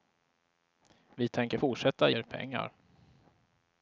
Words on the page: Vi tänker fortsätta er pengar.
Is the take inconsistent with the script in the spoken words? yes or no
no